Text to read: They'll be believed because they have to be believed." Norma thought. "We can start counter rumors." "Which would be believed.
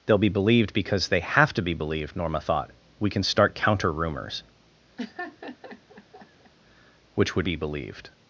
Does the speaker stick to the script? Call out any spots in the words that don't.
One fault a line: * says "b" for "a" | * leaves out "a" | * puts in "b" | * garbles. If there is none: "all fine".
all fine